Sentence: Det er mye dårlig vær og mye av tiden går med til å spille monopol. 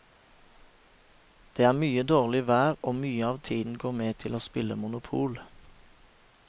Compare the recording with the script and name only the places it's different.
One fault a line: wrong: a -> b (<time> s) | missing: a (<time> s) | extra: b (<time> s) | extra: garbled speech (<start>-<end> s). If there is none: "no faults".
no faults